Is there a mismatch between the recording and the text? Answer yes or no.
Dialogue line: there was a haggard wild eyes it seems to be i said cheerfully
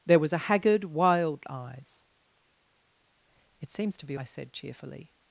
no